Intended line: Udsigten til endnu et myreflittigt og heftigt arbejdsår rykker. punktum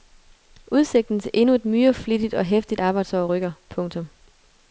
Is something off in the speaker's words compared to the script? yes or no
no